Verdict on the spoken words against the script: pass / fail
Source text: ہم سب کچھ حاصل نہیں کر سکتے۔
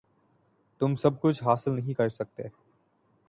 fail